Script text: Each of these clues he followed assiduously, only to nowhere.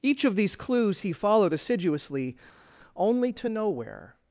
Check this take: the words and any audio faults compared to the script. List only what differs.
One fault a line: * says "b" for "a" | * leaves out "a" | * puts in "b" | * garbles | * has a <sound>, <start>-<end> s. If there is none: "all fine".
all fine